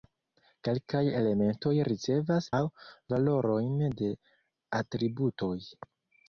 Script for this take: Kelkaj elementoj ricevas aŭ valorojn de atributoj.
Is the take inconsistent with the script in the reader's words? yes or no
no